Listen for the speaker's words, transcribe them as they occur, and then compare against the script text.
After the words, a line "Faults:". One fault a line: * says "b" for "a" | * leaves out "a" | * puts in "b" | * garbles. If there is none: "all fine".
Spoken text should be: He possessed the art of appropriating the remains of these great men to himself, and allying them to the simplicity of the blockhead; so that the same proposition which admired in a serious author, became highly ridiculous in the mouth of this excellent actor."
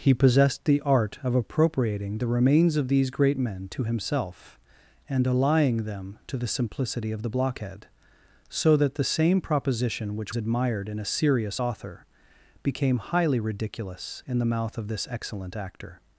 He possessed the art of appropriating the remains of these great men to himself, and allying them to the simplicity of the blockhead; so that the same proposition which admired in a serious author, became highly ridiculous in the mouth of this excellent actor."
Faults:
all fine